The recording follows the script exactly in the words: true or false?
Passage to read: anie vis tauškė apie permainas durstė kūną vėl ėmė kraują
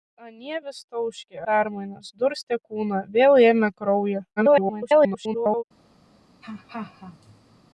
false